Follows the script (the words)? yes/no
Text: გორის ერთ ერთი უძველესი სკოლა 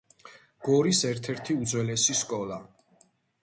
yes